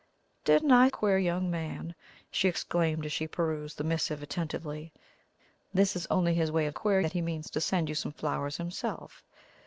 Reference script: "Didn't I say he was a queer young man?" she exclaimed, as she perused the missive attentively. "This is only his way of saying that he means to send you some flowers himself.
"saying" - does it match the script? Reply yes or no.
no